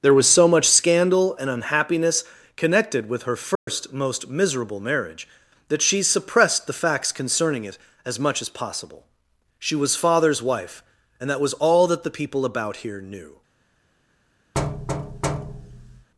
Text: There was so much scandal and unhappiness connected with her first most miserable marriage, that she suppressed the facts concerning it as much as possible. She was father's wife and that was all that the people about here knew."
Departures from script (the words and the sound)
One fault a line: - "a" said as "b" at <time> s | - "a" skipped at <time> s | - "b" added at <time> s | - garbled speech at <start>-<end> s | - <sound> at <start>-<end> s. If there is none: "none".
- dropout at 3.6-3.7 s
- thud at 14.5-16.1 s